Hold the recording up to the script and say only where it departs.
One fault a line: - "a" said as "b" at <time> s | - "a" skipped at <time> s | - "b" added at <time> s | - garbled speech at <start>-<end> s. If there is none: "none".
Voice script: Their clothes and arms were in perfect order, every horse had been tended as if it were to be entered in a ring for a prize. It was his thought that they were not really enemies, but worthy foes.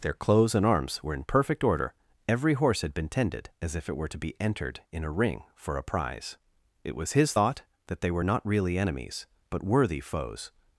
none